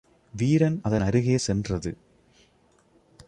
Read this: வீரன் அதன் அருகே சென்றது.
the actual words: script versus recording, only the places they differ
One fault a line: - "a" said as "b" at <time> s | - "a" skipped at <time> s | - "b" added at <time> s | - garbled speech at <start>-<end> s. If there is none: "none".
none